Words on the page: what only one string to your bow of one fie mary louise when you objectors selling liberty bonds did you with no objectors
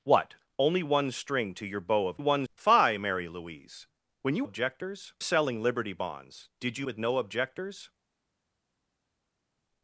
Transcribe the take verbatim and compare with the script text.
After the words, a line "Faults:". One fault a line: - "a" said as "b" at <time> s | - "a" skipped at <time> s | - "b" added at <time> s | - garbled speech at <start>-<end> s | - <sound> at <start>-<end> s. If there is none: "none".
what only one string to your bow of one fie mary louise when you objectors selling liberty bonds did you with no objectors
Faults:
none